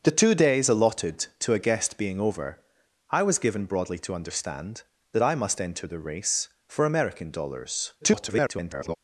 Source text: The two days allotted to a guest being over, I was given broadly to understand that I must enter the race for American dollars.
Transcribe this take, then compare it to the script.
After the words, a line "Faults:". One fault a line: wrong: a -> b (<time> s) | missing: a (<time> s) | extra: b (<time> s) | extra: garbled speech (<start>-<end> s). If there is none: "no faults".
The two days allotted to a guest being over, I was given broadly to understand that I must enter the race for American dollars. [garbled]
Faults:
extra: garbled speech (8.0-9.0 s)